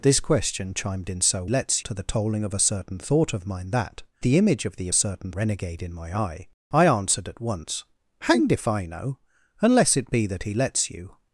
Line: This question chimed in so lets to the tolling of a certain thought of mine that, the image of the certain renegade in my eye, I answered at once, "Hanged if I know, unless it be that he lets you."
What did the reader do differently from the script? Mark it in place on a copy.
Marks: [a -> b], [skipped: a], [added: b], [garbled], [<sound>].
This question chimed in so lets to the tolling of a certain thought of mine that, the image of the certain renegade in my eye, I answered at once, "Hanged if I know, unless it be that he lets you."